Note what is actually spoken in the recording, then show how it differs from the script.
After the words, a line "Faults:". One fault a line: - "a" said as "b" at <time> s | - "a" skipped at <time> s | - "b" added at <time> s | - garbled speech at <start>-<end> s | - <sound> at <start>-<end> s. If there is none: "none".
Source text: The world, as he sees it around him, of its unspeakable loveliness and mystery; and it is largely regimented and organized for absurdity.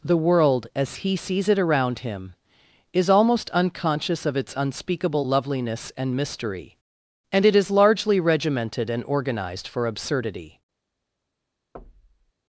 The world, as he sees it around him, is almost unconscious of its unspeakable loveliness and mystery; and it is largely regimented and organized for absurdity.
Faults:
- "is almost unconscious" added at 2.9 s
- thud at 11.7-12.3 s